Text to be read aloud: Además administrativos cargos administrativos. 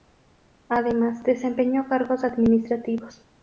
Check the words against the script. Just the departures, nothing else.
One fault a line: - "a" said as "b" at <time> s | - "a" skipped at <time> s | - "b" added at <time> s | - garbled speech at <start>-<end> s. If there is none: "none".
- "administrativos" said as "desempeñó" at 1.2 s